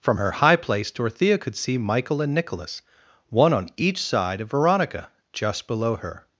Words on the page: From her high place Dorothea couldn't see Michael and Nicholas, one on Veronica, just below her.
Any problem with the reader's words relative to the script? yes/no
yes